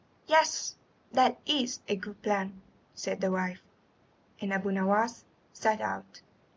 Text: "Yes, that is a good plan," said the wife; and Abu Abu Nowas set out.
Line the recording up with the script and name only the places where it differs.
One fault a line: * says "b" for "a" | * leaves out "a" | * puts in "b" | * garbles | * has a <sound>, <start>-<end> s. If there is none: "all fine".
* leaves out "Abu"